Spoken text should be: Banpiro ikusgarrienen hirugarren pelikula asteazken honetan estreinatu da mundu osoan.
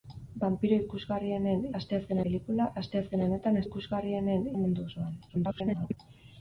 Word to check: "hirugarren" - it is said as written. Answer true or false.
false